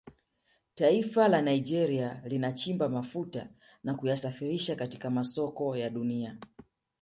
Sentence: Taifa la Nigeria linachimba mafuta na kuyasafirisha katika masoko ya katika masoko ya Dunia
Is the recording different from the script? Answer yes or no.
yes